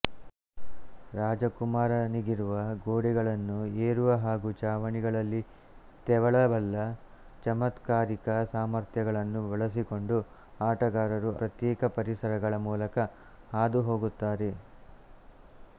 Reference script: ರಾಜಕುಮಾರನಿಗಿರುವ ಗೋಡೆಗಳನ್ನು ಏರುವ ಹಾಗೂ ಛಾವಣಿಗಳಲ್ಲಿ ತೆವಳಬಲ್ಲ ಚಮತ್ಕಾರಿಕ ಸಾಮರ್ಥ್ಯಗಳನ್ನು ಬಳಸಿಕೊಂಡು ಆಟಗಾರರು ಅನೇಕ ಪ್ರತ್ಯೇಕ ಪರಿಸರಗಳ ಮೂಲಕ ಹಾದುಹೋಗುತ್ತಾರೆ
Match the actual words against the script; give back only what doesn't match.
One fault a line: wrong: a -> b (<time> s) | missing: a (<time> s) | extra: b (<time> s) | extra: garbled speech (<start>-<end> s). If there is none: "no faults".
missing: ಅನೇಕ (11.3 s)